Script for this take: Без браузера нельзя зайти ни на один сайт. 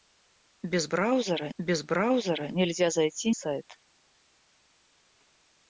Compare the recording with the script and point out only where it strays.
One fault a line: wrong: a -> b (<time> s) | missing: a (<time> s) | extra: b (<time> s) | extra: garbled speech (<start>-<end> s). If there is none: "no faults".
extra: без браузера (1.6 s)
missing: ни на один (3.3 s)